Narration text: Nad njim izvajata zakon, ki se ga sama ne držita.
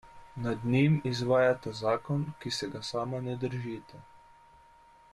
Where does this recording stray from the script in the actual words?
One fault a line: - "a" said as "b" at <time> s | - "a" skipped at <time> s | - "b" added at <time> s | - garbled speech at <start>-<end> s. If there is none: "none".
none